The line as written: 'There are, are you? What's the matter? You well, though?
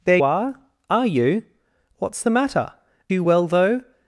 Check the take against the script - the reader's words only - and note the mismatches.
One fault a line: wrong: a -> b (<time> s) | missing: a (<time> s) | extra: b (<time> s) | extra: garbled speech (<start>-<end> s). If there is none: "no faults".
no faults